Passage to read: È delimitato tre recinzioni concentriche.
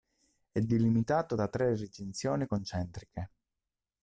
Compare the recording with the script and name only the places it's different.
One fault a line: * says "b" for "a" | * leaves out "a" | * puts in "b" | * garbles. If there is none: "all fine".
* puts in "da"